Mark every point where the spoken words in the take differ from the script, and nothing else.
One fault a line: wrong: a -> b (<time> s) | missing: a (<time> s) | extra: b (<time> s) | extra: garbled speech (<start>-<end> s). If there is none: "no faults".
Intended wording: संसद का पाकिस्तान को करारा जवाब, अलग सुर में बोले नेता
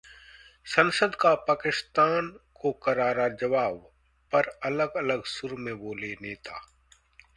extra: पर अलग (4.3 s)